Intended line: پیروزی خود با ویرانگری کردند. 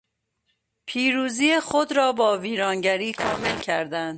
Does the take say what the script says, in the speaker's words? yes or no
no